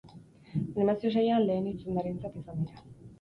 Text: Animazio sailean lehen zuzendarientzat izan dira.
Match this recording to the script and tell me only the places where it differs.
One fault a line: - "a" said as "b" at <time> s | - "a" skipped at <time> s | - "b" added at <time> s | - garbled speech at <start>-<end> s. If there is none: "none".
none